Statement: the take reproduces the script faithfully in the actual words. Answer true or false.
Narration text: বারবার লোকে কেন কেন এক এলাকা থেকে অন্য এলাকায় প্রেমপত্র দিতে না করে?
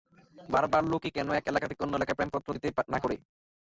false